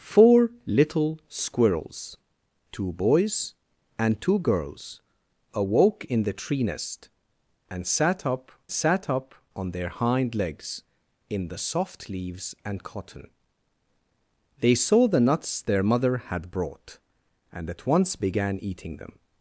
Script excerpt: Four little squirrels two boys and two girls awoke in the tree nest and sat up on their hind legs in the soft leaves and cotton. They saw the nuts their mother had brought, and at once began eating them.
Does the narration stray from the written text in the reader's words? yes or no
yes